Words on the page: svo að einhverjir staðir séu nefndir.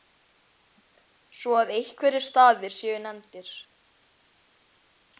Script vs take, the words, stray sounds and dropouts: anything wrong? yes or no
no